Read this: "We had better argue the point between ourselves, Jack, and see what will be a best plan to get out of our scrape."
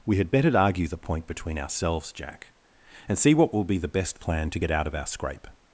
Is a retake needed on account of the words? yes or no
yes